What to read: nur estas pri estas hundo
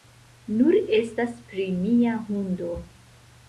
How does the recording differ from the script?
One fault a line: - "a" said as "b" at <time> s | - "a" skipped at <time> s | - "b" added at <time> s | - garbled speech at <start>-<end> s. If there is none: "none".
- "estas" said as "mia" at 1.9 s